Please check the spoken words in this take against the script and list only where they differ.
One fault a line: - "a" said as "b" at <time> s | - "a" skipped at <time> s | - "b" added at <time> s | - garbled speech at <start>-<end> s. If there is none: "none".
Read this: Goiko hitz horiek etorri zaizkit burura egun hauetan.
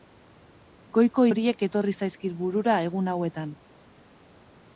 - "hitz" skipped at 1.2 s